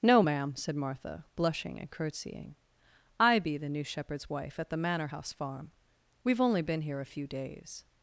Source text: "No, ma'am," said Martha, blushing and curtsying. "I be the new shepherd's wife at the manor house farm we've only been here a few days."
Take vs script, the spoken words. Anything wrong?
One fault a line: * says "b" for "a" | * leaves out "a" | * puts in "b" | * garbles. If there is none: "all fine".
all fine